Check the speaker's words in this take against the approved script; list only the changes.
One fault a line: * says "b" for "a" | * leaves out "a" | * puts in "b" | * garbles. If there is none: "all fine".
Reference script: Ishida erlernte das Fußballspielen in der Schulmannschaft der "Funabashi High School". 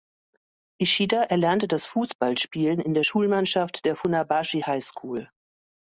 all fine